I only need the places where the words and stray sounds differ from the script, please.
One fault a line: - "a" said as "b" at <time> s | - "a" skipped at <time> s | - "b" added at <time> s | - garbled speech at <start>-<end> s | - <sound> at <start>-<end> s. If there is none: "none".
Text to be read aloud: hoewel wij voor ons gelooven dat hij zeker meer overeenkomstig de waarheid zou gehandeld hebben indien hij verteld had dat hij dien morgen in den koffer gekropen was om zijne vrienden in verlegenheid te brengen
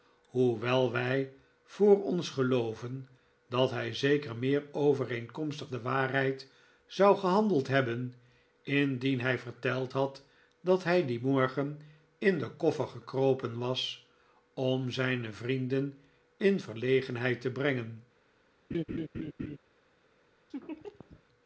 - laugh at 18.7-19.6 s
- laugh at 20.5-21.2 s